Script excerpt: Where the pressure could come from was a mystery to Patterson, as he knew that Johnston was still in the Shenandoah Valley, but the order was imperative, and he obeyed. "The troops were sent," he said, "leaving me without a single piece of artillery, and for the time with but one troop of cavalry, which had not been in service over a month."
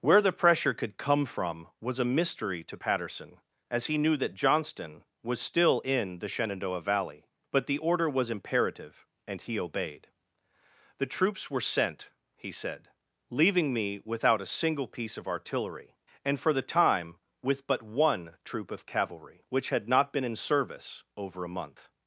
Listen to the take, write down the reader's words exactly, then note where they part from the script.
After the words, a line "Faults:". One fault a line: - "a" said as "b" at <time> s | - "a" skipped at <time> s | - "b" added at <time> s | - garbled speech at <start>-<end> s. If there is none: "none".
Where the pressure could come from was a mystery to Patterson, as he knew that Johnston was still in the Shenandoah Valley, but the order was imperative, and he obeyed. "The troops were sent," he said, "leaving me without a single piece of artillery, and for the time with but one troop of cavalry, which had not been in service over a month."
Faults:
none